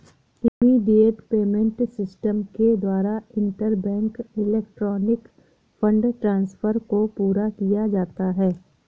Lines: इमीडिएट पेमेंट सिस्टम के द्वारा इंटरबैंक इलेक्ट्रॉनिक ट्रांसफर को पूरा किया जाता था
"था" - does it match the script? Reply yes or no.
no